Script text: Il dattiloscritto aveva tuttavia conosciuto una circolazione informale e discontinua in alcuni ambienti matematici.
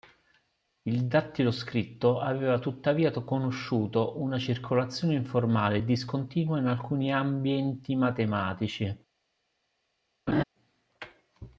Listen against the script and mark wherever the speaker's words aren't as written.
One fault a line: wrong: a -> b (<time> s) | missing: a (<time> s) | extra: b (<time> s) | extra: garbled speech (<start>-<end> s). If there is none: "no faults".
no faults